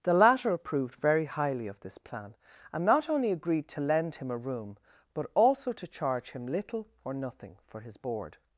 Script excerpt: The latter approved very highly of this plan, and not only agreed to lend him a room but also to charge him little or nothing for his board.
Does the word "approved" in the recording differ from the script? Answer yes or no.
no